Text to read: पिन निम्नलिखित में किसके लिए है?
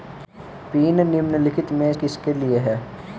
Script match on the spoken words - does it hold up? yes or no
yes